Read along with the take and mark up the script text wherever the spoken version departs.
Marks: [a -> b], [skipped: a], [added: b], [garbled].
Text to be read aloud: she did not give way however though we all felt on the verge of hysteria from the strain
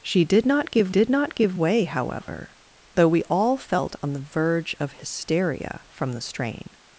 she did not give [added: did not give] way however though we all felt on the verge of hysteria from the strain